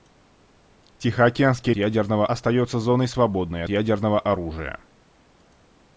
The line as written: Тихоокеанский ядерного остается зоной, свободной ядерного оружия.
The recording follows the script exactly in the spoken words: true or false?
true